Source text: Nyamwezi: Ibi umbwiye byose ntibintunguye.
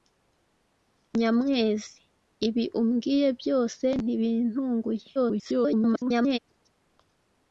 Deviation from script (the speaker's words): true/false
true